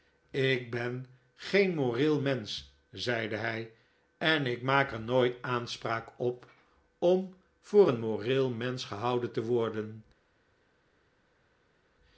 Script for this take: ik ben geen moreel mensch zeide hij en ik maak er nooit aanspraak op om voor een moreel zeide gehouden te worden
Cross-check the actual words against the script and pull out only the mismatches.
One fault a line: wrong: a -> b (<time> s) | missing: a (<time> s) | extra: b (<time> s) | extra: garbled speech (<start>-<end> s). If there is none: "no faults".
wrong: zeide -> mensch (8.5 s)